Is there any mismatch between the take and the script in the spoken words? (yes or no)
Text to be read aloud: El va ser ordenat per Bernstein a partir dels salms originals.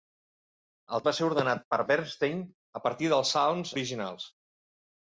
no